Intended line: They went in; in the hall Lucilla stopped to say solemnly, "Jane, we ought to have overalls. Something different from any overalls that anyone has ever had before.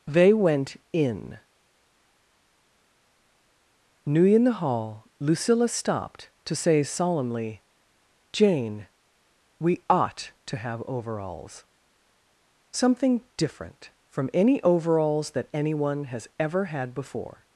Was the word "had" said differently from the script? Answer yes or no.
no